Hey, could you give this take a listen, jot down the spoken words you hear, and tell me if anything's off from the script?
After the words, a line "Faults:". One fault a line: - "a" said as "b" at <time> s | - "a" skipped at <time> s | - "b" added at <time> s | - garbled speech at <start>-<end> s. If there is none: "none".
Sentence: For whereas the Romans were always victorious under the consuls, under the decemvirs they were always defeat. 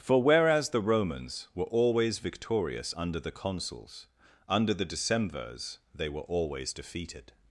For whereas the Romans were always victorious under the consuls, under the decemvirs they were always defeated.
Faults:
- "defeat" said as "defeated" at 6.7 s